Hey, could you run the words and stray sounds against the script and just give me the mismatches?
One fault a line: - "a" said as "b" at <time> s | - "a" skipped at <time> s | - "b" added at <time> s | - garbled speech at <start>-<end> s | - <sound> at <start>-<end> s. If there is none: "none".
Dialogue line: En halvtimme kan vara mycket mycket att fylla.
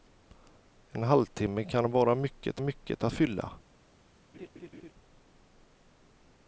- laugh at 4.3-4.9 s